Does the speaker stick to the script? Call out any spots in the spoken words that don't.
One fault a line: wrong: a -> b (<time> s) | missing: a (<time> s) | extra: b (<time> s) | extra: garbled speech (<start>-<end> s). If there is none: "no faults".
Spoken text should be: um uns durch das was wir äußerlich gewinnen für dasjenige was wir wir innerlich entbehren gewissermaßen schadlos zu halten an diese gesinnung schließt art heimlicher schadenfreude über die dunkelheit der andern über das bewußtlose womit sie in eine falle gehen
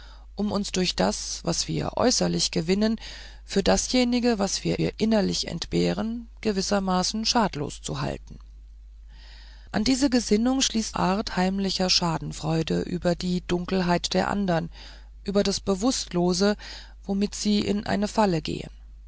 no faults